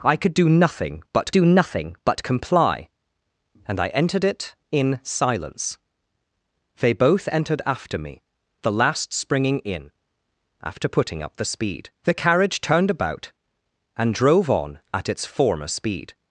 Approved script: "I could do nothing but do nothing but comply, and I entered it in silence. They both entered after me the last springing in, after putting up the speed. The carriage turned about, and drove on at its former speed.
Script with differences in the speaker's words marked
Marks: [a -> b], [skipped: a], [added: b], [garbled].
"I could do nothing but do nothing but comply, and I entered it in silence. They both entered after me the last springing in, after putting up the speed. The carriage turned about, and drove on at its former speed.